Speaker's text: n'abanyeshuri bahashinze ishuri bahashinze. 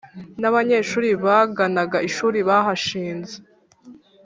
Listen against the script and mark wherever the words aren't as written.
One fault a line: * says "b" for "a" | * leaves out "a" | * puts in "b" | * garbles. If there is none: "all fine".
* says "baganaga" for "bahashinze"